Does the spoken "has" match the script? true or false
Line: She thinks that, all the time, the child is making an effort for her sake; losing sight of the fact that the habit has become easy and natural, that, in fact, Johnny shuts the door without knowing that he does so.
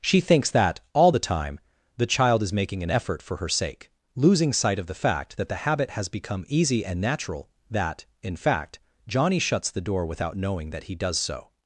true